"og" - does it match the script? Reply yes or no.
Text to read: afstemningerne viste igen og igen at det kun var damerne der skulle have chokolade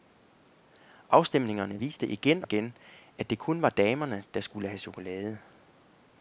no